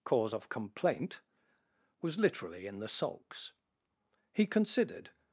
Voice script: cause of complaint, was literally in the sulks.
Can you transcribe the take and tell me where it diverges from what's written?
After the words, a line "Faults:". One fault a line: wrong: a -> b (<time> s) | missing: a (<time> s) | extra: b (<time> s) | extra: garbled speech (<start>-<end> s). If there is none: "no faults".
cause of complaint, was literally in the sulks. He considered
Faults:
extra: He considered (4.3 s)